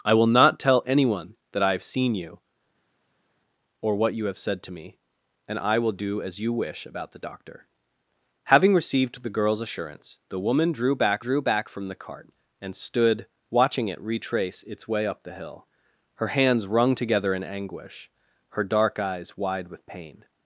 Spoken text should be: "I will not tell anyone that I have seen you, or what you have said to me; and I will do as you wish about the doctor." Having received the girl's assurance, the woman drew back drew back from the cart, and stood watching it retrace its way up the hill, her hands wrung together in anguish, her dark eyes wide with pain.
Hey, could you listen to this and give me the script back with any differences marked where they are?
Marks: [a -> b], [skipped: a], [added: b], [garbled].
"I will not tell anyone that I have seen you, or what you have said to me; and I will do as you wish about the doctor." Having received the girl's assurance, the woman drew back drew back from the cart, and stood watching it retrace its way up the hill, her hands wrung together in anguish, her dark eyes wide with pain.